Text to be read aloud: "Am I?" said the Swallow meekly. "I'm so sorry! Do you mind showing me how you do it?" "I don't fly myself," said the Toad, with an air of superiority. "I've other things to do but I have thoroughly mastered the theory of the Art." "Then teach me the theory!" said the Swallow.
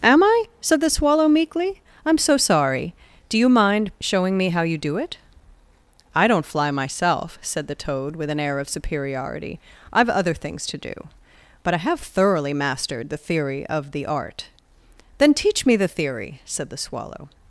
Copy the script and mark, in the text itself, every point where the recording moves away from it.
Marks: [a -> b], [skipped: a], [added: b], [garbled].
"Am I?" said the Swallow meekly. "I'm so sorry! Do you mind showing me how you do it?" "I don't fly myself," said the Toad, with an air of superiority. "I've other things to do but I have thoroughly mastered the theory of the Art." "Then teach me the theory!" said the Swallow.